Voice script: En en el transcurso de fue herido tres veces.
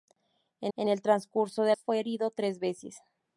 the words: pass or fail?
pass